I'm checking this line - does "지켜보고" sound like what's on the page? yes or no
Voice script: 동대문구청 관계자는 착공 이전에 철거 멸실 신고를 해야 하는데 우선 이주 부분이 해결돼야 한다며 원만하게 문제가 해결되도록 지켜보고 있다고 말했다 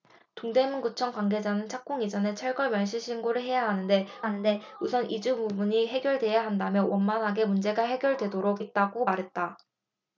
no